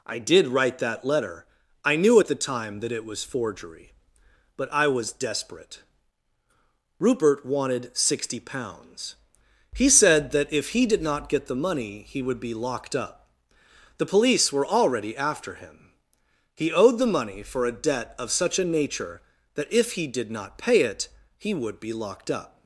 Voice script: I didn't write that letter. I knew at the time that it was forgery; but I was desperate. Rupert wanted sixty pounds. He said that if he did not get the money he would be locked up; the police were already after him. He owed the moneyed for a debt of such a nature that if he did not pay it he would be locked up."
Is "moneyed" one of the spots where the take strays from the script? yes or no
yes